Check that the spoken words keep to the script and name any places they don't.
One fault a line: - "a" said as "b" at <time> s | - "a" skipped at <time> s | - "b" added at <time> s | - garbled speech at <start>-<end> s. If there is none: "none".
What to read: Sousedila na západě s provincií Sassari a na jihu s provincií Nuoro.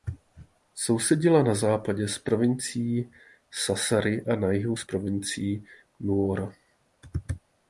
none